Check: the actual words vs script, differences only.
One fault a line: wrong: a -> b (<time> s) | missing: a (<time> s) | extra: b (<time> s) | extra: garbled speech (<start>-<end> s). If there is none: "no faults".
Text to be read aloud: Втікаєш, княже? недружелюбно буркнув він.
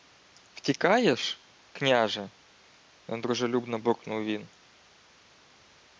no faults